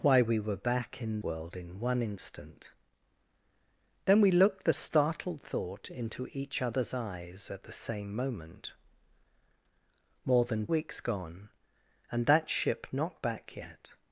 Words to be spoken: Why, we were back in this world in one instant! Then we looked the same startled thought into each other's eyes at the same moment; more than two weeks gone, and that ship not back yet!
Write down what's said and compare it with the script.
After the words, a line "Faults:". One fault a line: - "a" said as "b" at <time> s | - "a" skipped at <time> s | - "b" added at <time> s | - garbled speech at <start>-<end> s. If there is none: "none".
Why, we were back in world in one instant! Then we looked the startled thought into each other's eyes at the same moment; more than weeks gone, and that ship not back yet!
Faults:
- "this" skipped at 1.2 s
- "same" skipped at 4.7 s
- "two" skipped at 10.7 s